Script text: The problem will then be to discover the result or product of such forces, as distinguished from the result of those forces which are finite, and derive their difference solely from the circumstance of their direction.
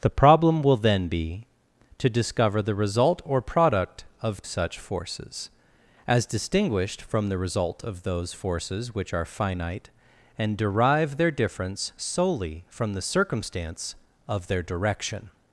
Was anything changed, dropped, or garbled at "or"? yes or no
no